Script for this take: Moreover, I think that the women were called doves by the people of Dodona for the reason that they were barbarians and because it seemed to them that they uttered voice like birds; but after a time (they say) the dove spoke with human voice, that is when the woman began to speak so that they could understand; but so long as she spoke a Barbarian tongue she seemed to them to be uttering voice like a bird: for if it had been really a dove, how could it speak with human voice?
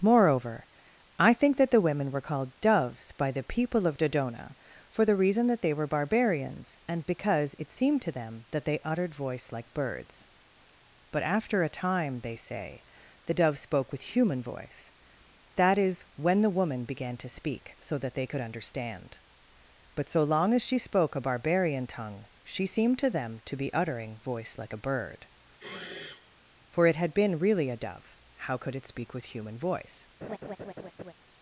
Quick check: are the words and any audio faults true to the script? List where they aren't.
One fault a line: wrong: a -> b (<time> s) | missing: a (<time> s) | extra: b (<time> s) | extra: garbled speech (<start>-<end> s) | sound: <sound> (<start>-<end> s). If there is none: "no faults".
sound: sniff (25.6-26.3 s)
missing: if (26.9 s)
sound: laugh (30.2-31.1 s)